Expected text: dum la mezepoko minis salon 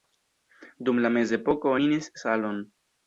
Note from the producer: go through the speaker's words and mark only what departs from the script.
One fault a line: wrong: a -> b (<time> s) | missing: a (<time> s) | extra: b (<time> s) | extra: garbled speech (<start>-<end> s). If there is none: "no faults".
no faults